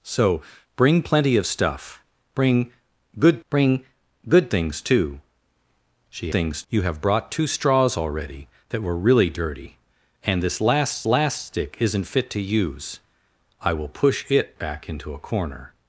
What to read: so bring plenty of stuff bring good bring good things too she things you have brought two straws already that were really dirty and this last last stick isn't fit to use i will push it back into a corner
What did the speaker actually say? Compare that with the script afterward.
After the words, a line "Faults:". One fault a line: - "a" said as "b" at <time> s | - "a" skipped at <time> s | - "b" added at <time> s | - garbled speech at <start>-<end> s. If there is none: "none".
so bring plenty of stuff bring good bring good things too she things you have brought two straws already that were really dirty and this last last stick isn't fit to use i will push it back into a corner
Faults:
none